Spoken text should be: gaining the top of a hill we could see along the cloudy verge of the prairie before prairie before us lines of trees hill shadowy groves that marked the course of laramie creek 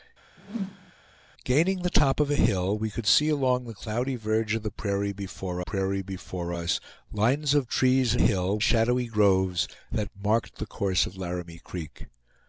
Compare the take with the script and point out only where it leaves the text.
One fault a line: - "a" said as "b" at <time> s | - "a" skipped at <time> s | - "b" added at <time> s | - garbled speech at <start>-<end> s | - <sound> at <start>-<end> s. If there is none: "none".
- whoosh at 0.4-0.9 s